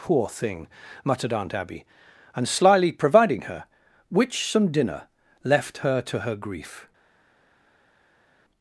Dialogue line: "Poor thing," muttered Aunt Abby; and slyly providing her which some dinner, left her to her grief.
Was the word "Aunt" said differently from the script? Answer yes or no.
no